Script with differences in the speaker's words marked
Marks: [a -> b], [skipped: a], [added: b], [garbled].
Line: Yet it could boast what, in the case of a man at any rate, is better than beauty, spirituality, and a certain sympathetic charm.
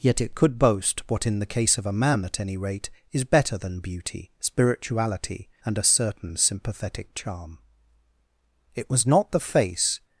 Yet it could boast what, in the case of a man at any rate, is better than beauty, spirituality, and a certain sympathetic charm. [added: It was not the face]